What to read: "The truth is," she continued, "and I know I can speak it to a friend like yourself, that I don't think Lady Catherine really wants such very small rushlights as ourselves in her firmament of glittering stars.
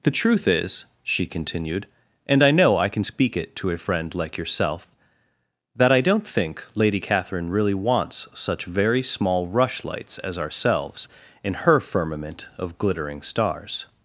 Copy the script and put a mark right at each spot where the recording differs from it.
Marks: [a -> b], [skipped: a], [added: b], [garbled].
"The truth is," she continued, "and I know I can speak it to a friend like yourself, that I don't think Lady Catherine really wants such very small rushlights as ourselves in her firmament of glittering stars.